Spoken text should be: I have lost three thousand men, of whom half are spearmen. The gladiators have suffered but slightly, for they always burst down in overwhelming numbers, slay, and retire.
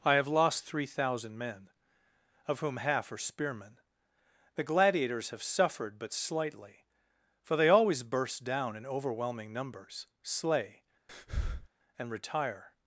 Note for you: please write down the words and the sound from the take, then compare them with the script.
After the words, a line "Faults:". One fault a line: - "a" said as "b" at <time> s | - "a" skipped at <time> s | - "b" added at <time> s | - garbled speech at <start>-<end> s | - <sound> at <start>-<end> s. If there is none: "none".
I have lost three thousand men, of whom half are spearmen. The gladiators have suffered but slightly, for they always burst down in overwhelming numbers, slay, and retire.
Faults:
- breath at 11.1-11.7 s